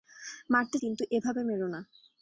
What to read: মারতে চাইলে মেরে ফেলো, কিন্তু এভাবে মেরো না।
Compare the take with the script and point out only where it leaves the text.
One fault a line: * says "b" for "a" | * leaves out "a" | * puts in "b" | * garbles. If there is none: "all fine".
* leaves out "চাইলে মেরে ফেলো"